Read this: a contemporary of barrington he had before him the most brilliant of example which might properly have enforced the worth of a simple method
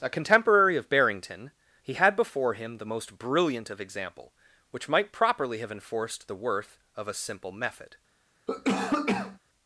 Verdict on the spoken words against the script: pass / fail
pass